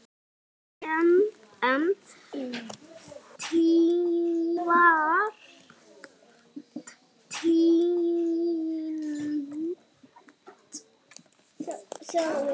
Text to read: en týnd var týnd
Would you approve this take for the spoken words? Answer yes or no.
yes